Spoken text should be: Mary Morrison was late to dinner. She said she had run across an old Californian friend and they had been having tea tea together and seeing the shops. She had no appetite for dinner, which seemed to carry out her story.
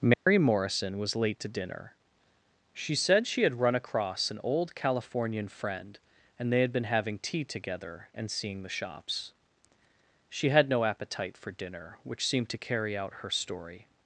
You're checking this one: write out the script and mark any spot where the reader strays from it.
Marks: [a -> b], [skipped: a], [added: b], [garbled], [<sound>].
Mary [dropout] Morrison was late to dinner. She said she had run across an old Californian friend and they had been having tea [skipped: tea] together and seeing the shops. She had no appetite for dinner, which seemed to carry out her story.